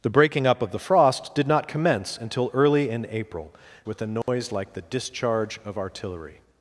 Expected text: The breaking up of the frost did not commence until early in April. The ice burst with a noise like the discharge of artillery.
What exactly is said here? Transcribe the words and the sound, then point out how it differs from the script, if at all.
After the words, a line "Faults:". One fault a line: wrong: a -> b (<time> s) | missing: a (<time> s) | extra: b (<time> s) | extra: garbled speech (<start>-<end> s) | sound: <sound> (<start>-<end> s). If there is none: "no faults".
The breaking up of the frost did not commence until early in April. With a noise like the discharge of artillery.
Faults:
missing: The ice burst (3.5 s)
sound: dropout (4.2-4.3 s)